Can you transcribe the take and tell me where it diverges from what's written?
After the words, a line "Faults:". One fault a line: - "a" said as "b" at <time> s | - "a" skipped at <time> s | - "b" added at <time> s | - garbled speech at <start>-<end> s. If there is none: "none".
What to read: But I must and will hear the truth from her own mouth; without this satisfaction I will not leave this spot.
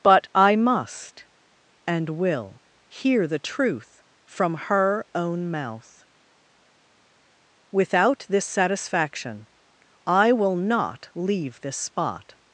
But I must and will hear the truth from her own mouth; without this satisfaction I will not leave this spot.
Faults:
none